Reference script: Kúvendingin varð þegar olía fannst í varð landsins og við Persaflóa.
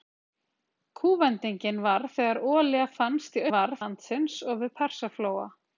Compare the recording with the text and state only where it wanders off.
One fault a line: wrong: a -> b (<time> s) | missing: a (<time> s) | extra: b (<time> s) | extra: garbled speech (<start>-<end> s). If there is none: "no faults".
no faults